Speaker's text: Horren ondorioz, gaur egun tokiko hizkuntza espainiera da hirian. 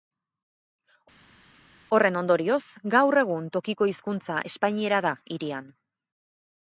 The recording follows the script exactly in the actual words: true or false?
true